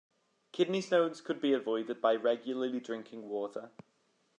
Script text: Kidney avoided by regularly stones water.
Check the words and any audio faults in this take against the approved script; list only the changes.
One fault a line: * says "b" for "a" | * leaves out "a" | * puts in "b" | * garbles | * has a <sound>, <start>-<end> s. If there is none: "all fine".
* puts in "stones could be"
* says "drinking" for "stones"